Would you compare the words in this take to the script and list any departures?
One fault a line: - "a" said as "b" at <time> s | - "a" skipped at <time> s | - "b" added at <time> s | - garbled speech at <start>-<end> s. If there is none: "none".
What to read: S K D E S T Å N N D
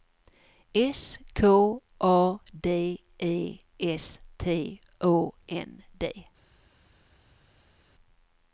- "A" added at 2.0 s
- "N" skipped at 5.8 s